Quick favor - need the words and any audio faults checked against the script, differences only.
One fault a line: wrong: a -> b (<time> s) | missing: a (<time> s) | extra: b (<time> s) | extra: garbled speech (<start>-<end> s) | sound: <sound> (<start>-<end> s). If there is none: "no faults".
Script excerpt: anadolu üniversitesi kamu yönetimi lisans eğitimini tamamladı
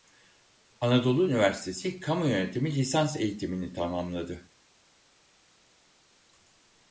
no faults